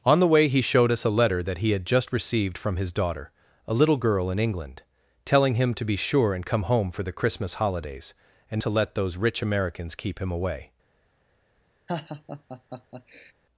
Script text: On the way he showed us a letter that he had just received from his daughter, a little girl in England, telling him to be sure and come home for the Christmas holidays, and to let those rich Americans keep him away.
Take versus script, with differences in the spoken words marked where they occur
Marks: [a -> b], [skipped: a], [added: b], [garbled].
On the way he showed us a letter that he had just received from his daughter, a little girl in England, telling him to be sure and come home for the Christmas holidays, and to let those rich Americans keep him away.